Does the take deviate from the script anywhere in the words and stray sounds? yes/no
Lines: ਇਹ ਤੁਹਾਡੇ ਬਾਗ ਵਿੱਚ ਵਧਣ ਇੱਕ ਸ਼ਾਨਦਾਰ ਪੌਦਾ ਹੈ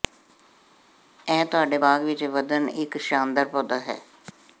no